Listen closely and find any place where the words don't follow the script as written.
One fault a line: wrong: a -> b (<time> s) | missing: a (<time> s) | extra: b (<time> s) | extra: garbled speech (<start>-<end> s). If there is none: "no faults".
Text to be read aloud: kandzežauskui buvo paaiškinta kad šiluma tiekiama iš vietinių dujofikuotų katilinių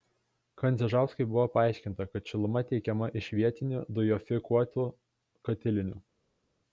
no faults